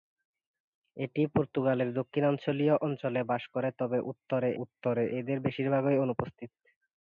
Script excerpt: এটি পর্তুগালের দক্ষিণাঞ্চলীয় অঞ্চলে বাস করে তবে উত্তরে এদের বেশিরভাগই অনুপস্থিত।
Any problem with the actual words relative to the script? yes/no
yes